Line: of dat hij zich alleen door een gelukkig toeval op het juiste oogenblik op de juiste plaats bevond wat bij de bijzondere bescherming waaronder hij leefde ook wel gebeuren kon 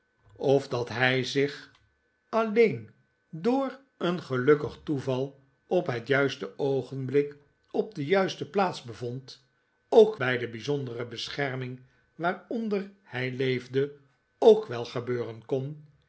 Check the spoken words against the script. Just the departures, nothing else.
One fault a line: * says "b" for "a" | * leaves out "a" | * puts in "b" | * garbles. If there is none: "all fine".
* says "ook" for "wat"